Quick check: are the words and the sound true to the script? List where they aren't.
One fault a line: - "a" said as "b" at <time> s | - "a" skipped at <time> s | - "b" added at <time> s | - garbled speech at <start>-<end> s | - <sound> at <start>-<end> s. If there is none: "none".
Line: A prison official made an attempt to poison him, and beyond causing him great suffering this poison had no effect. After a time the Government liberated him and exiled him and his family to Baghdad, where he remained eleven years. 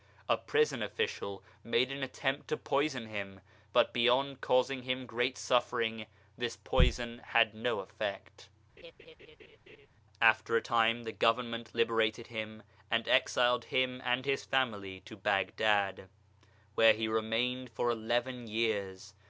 - "and" said as "but" at 3.7 s
- laugh at 8.8-9.9 s
- "for" added at 17.7 s